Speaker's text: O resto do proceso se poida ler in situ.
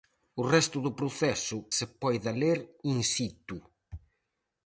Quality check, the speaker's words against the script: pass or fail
pass